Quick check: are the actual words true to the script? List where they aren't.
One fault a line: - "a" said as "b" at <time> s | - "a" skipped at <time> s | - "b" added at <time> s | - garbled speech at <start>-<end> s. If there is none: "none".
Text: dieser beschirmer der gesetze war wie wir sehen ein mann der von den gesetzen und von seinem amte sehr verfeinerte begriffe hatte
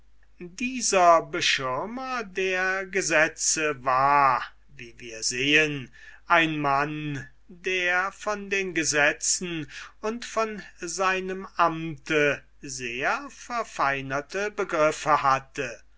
none